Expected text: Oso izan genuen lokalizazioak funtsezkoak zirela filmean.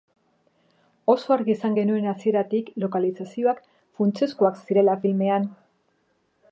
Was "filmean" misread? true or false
false